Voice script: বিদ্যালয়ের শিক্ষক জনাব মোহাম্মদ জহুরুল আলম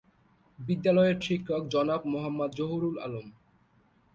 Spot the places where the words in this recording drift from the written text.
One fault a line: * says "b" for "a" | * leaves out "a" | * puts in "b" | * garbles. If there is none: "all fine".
all fine